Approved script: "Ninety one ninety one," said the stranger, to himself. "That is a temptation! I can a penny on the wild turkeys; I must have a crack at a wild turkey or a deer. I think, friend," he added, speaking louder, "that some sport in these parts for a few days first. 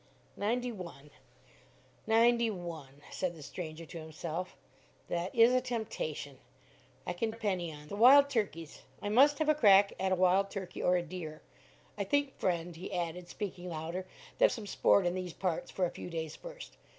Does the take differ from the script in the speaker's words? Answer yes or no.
no